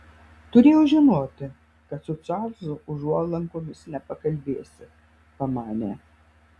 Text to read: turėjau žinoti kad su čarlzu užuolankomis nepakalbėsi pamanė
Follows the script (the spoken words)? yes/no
yes